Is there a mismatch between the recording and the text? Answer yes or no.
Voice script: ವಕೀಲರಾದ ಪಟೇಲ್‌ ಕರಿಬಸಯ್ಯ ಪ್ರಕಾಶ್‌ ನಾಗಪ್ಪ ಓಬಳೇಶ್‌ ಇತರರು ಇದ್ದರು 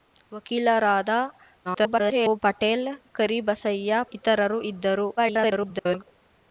yes